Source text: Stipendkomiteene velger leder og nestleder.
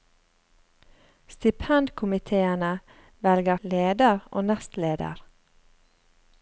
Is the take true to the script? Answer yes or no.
yes